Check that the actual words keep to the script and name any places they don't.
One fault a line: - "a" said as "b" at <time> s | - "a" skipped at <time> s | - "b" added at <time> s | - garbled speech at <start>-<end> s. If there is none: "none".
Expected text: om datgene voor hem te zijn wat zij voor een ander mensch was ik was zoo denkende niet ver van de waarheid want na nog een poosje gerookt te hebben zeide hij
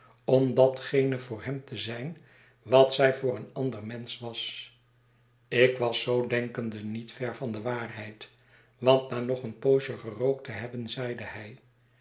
none